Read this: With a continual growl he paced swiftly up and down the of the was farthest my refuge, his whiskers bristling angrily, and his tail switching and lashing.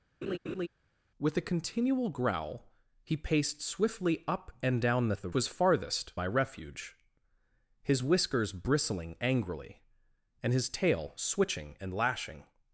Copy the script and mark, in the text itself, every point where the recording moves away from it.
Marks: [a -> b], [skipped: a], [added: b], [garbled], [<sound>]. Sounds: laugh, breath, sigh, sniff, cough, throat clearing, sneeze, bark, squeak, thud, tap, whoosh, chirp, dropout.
[laugh] With a continual growl he paced swiftly up and down the of the was farthest my refuge, his whiskers bristling angrily, and his tail switching and lashing.